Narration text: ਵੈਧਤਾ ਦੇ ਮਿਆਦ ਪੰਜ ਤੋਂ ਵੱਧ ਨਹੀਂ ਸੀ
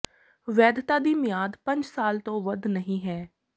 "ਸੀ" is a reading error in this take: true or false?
true